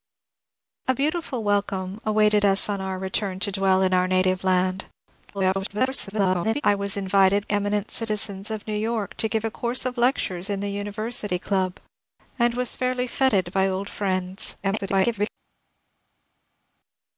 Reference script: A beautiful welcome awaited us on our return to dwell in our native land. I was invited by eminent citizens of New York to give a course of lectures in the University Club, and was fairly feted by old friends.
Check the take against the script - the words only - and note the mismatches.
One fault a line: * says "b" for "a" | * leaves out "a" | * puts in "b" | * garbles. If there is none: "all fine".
* garbles
* leaves out "by"
* garbles